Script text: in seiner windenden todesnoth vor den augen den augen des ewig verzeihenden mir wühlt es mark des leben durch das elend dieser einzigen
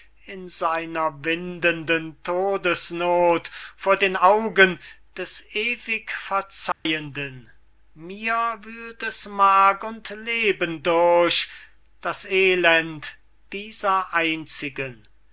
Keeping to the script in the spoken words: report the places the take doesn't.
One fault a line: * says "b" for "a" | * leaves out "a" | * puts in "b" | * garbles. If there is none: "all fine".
* leaves out "den augen"
* says "und" for "des"